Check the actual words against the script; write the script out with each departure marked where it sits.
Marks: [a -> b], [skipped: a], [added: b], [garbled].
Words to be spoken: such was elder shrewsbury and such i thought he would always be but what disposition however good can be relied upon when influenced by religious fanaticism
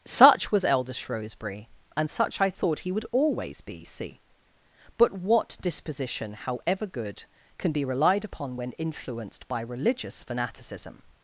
such was elder shrewsbury and such i thought he would always be [added: see] but what disposition however good can be relied upon when influenced by religious fanaticism